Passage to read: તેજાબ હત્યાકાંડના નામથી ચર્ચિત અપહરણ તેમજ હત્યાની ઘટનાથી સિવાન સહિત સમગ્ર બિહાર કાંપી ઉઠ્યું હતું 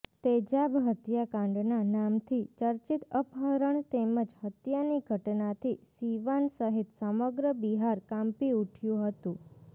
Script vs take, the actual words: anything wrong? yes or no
no